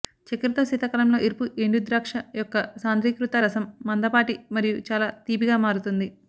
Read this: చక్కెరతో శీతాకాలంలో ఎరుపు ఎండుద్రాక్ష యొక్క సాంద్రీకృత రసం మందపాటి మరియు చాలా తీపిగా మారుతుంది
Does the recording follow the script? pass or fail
pass